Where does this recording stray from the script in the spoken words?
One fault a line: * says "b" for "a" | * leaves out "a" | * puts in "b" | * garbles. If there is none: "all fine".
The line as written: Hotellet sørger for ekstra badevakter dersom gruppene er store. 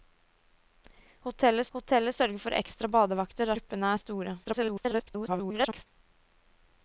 * puts in "hotellet"
* leaves out "dersom"
* garbles